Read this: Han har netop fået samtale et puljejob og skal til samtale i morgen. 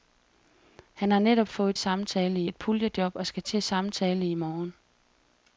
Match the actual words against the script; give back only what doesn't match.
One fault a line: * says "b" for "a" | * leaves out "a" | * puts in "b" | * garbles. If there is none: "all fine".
all fine